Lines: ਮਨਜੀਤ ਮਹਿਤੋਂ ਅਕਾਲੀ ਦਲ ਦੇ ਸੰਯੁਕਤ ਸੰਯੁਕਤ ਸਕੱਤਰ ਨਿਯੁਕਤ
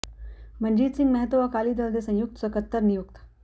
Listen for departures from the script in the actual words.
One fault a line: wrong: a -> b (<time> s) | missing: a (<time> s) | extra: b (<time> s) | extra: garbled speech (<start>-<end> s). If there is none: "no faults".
extra: ਸਿੰਘ (0.9 s)
missing: ਸੰਯੁਕਤ (2.4 s)